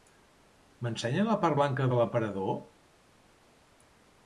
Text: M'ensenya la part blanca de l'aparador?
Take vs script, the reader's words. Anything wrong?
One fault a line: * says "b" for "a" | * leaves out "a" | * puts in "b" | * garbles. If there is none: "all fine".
all fine